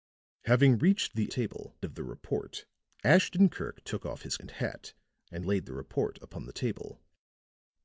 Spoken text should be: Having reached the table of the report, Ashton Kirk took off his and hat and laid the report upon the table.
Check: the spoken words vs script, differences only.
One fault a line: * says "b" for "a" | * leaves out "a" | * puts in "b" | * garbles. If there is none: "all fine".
all fine